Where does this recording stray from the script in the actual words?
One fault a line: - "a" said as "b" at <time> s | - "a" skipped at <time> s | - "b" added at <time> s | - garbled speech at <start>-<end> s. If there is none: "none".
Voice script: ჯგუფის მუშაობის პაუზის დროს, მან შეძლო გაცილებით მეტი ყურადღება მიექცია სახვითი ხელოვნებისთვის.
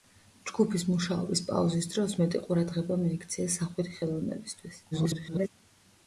- "მან შეძლო გაცილებით" skipped at 2.1 s
- garbled speech at 4.9-5.5 s